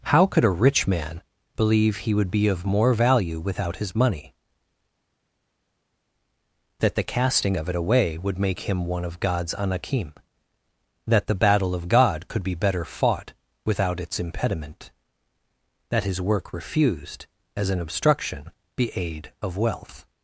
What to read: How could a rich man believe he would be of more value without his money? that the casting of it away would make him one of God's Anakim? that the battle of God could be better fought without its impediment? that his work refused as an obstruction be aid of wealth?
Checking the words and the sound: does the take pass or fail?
pass